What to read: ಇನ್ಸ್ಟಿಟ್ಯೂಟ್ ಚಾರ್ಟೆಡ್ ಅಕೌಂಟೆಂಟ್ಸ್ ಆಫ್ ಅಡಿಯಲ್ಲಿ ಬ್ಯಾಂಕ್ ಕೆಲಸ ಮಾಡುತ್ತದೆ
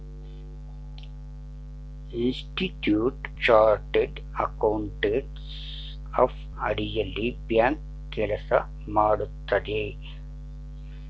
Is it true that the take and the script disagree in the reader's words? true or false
false